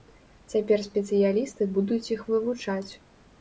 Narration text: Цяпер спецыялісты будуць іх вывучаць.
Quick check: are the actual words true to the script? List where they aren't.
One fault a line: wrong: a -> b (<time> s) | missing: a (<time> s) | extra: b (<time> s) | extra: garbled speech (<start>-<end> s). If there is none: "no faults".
no faults